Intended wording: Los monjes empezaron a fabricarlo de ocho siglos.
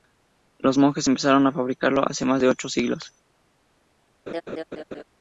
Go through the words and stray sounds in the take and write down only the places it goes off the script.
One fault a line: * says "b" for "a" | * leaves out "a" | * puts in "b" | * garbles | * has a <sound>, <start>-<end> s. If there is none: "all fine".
* puts in "hace más"
* has a laugh, 4.3-5.0 s